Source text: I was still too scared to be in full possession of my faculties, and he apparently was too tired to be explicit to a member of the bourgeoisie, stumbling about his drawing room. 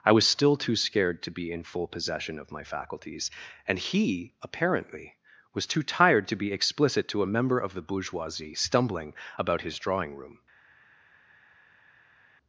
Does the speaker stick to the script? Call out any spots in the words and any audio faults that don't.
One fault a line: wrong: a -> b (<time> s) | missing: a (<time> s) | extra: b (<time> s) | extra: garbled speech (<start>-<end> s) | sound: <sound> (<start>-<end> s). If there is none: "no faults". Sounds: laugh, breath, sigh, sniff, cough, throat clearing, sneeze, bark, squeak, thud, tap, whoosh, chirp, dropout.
no faults